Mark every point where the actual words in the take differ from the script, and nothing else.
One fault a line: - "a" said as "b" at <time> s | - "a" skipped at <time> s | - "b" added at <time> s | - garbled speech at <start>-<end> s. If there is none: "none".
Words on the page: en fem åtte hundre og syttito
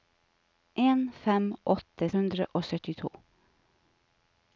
none